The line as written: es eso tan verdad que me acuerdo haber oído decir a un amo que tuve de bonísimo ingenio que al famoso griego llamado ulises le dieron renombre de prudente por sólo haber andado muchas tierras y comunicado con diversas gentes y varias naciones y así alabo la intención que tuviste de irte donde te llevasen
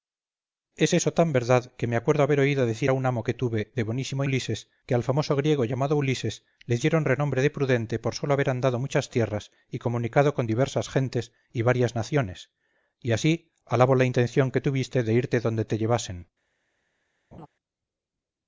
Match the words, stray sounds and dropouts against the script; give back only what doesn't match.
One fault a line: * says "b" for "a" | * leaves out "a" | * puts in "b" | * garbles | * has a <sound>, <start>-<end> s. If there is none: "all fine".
* says "ulises" for "ingenio"
* has a laugh, 17.3-17.5 s